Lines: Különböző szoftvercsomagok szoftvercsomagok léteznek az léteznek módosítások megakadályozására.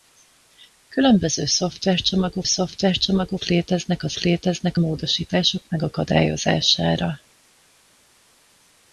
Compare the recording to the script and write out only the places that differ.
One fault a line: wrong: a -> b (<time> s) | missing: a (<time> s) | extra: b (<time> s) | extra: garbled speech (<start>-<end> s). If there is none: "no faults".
no faults